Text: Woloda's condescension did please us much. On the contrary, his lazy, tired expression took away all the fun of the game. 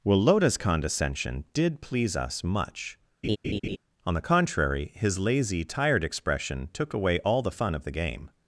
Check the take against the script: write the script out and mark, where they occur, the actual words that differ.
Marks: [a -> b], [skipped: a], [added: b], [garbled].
Woloda's condescension did please us much. On the contrary, his lazy, tired expression took away all the fun of the game.